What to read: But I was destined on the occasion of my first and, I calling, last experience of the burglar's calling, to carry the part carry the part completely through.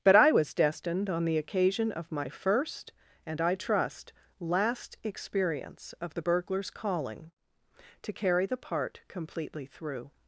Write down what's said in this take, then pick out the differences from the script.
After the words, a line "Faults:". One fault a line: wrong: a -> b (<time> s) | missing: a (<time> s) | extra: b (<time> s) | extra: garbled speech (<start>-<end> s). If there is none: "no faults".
But I was destined on the occasion of my first and, I trust, last experience of the burglar's calling, to carry the part completely through.
Faults:
wrong: calling -> trust (3.5 s)
missing: carry the part (9.0 s)